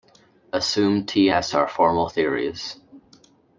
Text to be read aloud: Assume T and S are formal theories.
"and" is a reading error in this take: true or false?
true